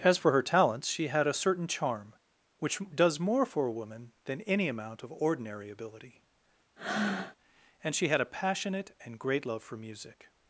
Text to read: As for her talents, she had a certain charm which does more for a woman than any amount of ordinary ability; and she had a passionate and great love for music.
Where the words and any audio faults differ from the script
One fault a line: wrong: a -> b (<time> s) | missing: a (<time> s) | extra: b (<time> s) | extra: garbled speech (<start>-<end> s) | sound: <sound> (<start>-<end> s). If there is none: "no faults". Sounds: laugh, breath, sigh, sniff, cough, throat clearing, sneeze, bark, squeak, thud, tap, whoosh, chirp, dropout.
sound: breath (6.8-7.4 s)